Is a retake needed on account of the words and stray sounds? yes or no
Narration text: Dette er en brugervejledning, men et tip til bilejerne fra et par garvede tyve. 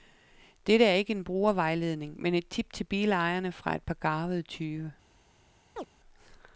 yes